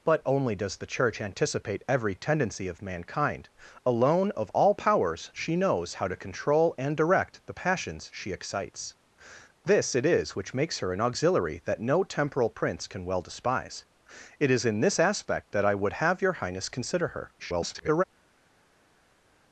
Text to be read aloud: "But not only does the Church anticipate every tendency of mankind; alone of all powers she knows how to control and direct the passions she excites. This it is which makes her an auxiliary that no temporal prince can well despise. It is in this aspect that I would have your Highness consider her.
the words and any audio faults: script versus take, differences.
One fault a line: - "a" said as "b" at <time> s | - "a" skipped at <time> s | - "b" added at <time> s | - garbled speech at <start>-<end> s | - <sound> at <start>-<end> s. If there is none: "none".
- "not" skipped at 0.3 s
- garbled speech at 17.4-18.0 s